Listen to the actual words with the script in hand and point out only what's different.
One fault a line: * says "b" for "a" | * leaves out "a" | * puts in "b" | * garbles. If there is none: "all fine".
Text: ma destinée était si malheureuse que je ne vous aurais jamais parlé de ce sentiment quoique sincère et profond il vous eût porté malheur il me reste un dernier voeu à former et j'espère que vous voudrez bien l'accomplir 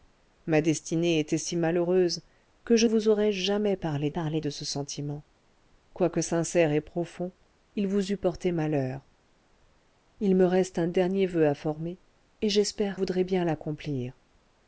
* leaves out "ne"
* puts in "parlé"
* leaves out "que vous"